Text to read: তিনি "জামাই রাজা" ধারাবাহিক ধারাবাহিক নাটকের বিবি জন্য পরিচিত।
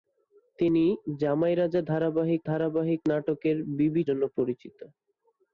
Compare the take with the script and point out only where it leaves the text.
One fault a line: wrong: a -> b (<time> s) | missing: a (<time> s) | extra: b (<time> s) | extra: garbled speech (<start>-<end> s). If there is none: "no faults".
no faults